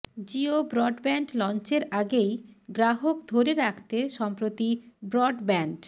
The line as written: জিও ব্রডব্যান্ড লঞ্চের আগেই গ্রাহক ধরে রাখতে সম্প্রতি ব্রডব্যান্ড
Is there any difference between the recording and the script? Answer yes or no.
no